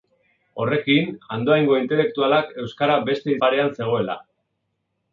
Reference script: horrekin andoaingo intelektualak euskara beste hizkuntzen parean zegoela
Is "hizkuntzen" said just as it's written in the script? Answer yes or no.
no